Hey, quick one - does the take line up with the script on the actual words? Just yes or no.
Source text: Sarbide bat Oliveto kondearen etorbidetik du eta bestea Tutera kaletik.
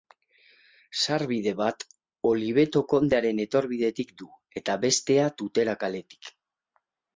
yes